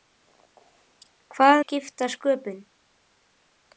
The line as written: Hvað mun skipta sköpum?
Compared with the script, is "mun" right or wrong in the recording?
wrong